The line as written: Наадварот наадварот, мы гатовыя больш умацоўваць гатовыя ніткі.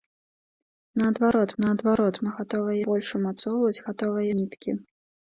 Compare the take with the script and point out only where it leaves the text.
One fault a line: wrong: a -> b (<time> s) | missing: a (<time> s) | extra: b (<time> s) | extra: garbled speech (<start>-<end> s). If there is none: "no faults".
no faults